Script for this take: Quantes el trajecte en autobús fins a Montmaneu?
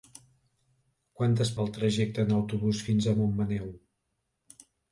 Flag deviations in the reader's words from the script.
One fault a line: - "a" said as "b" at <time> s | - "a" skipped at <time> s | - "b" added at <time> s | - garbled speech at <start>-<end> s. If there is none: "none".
none